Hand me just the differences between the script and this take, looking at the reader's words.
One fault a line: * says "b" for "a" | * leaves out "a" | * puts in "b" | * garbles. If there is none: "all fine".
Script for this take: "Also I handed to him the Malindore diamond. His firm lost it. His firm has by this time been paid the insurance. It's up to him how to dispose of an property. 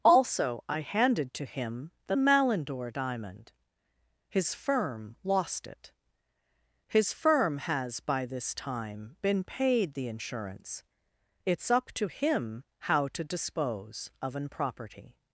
all fine